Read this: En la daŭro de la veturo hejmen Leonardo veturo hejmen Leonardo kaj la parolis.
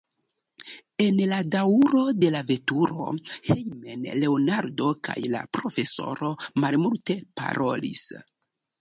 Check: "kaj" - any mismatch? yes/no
yes